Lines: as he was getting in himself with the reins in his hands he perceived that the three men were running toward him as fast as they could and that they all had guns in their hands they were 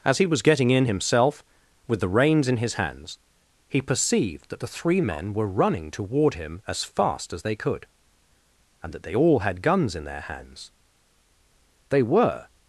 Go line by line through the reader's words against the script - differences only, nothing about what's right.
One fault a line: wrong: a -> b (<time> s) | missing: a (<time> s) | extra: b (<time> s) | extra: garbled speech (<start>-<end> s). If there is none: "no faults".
no faults